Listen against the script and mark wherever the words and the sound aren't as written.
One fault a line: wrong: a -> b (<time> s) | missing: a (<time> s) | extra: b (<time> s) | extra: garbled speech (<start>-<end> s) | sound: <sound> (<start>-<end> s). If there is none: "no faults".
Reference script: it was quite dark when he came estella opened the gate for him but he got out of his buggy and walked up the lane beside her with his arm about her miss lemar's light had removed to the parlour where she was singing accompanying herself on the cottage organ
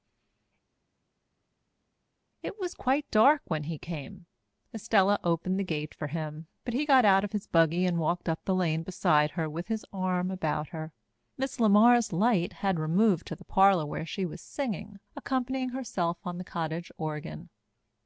no faults